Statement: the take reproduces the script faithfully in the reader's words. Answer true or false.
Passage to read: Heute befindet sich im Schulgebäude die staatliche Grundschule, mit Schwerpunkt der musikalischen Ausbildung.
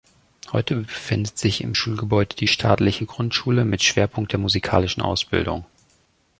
true